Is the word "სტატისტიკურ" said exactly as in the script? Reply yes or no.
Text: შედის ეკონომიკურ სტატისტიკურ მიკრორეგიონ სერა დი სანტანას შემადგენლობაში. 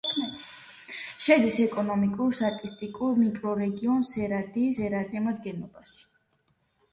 yes